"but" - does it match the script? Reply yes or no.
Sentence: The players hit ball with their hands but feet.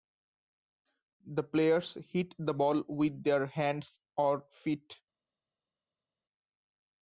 no